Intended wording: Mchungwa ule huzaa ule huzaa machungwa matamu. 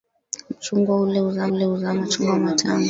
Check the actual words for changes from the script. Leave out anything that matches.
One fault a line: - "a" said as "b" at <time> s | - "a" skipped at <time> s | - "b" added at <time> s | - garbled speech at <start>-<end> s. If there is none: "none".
none